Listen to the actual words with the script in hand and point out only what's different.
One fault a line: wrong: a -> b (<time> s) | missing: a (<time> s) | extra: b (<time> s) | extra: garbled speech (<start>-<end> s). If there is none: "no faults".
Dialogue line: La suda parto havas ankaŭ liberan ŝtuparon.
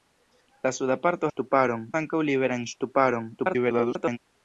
wrong: havas -> ŝtuparon (1.3 s)
extra: garbled speech (3.4-4.2 s)